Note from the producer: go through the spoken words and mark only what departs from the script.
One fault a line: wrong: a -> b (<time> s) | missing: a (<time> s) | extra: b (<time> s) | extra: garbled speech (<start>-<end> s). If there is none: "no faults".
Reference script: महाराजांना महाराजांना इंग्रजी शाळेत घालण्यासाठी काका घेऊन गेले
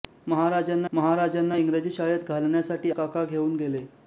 no faults